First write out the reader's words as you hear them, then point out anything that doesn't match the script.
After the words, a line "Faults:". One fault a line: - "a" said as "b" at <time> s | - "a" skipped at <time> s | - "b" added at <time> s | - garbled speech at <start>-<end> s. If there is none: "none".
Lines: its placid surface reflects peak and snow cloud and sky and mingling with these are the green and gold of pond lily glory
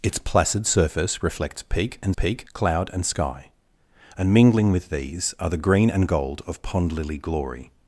its placid surface reflects peak and peak cloud and sky and mingling with these are the green and gold of pond lily glory
Faults:
- "snow" said as "peak" at 2.1 s